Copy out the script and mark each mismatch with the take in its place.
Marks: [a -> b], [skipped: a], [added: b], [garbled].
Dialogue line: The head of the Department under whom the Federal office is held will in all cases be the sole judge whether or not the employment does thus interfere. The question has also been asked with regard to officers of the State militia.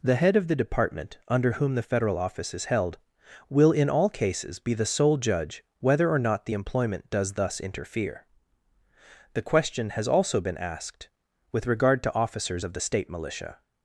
The head of the Department under whom the Federal office is held will in all cases be the sole judge whether or not the employment does thus interfere. The question has also been asked with regard to officers of the State militia.